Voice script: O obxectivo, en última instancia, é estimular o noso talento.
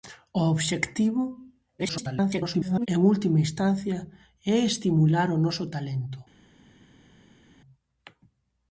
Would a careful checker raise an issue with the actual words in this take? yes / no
yes